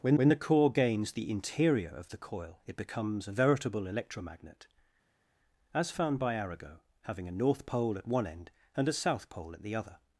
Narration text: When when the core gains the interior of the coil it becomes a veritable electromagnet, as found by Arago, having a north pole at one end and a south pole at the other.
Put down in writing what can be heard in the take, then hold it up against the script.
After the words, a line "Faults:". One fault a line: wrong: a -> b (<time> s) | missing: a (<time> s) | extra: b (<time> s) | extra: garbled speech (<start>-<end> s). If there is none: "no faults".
When when the core gains the interior of the coil it becomes a veritable electromagnet, as found by Arago, having a north pole at one end and a south pole at the other.
Faults:
no faults